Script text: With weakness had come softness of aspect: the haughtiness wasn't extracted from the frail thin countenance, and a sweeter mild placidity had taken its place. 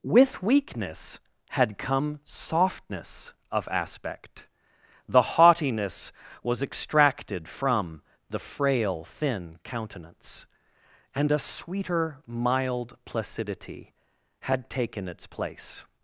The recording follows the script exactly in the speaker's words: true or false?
false